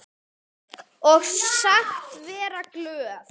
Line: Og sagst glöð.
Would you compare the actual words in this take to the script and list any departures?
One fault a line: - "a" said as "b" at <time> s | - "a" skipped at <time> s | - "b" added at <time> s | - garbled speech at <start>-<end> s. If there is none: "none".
- "vera" added at 2.3 s